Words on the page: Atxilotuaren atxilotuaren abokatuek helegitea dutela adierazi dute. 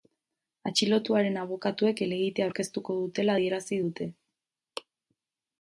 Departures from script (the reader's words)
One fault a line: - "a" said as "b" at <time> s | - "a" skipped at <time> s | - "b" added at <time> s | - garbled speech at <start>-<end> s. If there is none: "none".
- "atxilotuaren" skipped at 1.4 s
- "aurkeztuko" added at 2.5 s